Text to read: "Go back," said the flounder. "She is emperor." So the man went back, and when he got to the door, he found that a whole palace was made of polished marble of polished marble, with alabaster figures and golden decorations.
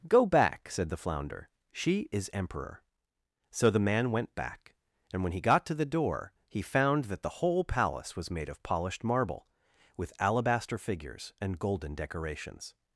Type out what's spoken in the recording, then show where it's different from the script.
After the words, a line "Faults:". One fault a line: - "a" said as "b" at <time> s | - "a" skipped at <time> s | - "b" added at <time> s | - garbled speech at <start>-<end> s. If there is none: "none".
"Go back," said the flounder. "She is emperor." So the man went back, and when he got to the door, he found that the whole palace was made of polished marble, with alabaster figures and golden decorations.
Faults:
- "a" said as "the" at 7.2 s
- "of polished marble" skipped at 9.5 s